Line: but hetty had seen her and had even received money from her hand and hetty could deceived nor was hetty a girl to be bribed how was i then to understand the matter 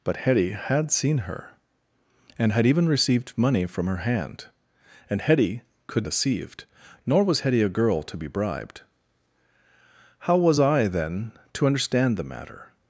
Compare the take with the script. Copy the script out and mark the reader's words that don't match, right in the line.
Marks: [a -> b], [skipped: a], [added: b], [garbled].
but hetty had seen her and had even received money from her hand and hetty could deceived nor was hetty a girl to be bribed how was i then to understand the matter